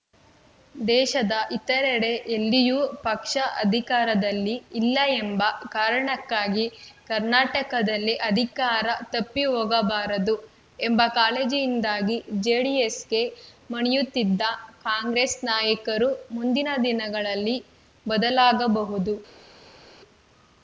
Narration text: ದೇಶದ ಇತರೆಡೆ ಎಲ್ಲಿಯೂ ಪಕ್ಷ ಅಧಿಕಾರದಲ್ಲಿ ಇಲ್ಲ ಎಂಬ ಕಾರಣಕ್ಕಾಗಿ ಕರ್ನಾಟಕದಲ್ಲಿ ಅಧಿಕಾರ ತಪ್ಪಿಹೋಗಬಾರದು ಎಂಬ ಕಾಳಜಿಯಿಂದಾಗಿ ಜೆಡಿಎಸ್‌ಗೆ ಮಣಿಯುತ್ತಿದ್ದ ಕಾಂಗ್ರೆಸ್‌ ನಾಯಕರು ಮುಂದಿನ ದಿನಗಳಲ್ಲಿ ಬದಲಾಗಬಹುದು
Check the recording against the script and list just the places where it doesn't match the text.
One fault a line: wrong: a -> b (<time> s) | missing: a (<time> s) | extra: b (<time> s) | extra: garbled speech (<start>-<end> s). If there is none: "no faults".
no faults